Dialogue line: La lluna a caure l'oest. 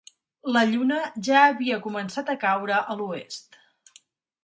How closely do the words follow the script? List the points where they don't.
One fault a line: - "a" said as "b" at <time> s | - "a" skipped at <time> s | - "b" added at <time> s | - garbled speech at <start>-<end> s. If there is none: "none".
- "ja havia començat" added at 1.3 s
- "a" added at 2.8 s